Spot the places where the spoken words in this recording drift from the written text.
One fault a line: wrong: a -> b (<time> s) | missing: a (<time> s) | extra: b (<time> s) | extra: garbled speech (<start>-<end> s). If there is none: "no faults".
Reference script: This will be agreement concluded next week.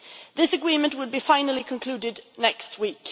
extra: agreement (0.5 s)
wrong: agreement -> finally (1.2 s)